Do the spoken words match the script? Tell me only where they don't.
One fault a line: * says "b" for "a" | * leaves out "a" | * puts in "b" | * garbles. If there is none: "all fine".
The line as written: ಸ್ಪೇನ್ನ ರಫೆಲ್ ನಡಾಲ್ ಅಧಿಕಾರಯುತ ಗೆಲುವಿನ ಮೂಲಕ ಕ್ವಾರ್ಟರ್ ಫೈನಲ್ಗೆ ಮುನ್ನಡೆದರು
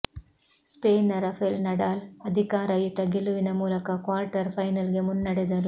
all fine